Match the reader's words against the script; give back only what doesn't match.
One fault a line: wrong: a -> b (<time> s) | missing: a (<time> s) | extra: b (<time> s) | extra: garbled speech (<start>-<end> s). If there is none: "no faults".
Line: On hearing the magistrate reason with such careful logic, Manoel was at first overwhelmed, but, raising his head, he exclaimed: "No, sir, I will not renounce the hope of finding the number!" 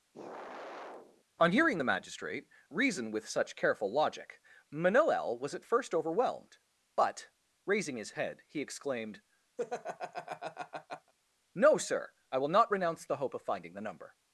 no faults